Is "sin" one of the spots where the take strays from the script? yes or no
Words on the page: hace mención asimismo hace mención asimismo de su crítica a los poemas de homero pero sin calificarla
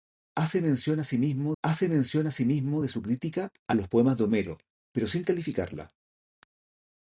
no